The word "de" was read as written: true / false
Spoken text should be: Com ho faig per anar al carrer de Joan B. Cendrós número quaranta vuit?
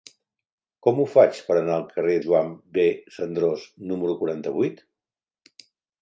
false